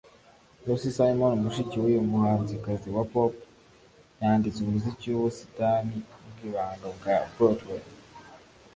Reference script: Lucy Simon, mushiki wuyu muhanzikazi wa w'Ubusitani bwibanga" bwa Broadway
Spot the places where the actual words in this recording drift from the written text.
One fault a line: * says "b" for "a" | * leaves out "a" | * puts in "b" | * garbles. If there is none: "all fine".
* puts in "pop yanditse umuziki"